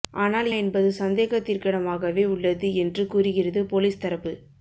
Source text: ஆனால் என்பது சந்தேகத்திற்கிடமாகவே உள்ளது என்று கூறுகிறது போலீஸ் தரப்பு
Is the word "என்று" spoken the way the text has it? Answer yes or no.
yes